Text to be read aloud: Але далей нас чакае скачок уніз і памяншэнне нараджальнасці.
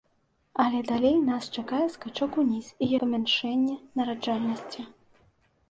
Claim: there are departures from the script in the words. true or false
false